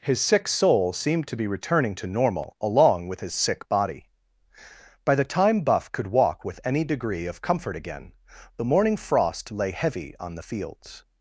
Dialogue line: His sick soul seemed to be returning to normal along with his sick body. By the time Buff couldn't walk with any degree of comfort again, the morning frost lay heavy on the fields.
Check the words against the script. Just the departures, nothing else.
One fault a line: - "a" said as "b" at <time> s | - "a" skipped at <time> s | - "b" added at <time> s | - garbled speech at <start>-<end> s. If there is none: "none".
- "couldn't" said as "could" at 5.9 s